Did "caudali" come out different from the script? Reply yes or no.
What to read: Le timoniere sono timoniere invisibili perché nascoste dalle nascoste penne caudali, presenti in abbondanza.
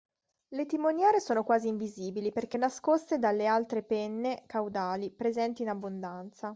no